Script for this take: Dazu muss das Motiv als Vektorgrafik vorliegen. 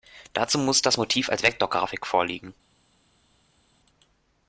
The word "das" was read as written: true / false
true